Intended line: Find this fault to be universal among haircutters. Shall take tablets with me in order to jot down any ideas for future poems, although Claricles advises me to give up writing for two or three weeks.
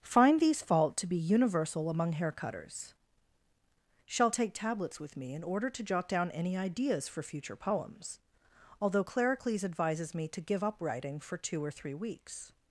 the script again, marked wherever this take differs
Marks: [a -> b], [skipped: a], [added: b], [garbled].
Find [this -> these] fault to be universal among haircutters. Shall take tablets with me in order to jot down any ideas for future poems, although Claricles advises me to give up writing for two or three weeks.